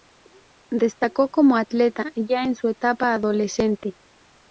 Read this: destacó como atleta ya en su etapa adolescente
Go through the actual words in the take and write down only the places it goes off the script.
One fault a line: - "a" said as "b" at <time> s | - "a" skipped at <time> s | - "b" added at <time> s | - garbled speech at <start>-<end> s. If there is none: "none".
none